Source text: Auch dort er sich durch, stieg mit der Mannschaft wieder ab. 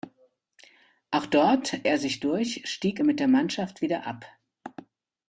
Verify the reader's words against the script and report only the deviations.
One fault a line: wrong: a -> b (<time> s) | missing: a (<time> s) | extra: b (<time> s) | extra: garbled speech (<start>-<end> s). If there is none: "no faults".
no faults